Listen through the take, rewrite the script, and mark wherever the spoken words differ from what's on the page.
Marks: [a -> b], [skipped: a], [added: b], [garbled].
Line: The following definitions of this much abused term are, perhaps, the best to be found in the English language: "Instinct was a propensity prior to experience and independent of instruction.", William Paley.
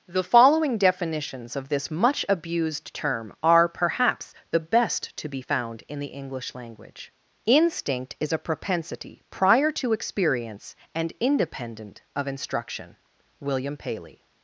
The following definitions of this much abused term are, perhaps, the best to be found in the English language: "Instinct [was -> is] a propensity prior to experience and independent of instruction.", William Paley.